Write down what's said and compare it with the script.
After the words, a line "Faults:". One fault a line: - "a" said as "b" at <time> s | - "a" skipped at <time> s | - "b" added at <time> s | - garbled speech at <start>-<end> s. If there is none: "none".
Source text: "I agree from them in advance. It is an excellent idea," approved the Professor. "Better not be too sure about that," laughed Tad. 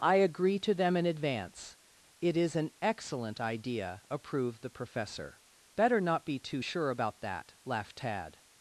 "I agree to them in advance. It is an excellent idea," approved the Professor. "Better not be too sure about that," laughed Tad.
Faults:
- "from" said as "to" at 0.6 s